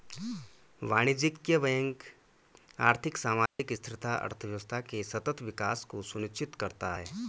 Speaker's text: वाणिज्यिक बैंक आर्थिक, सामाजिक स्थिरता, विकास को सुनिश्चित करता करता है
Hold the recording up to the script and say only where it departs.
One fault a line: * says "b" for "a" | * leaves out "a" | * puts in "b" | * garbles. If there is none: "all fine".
* puts in "अर्थव्यवस्था के सतत"
* leaves out "करता"